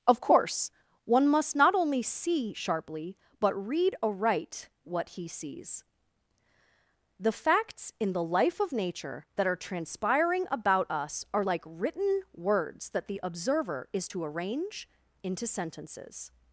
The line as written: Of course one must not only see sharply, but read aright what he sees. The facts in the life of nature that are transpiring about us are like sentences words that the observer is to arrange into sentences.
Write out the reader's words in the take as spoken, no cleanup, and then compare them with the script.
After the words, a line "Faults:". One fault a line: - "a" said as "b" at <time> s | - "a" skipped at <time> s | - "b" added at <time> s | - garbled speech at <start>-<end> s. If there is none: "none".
Of course one must not only see sharply, but read aright what he sees. The facts in the life of nature that are transpiring about us are like written words that the observer is to arrange into sentences.
Faults:
- "sentences" said as "written" at 11.6 s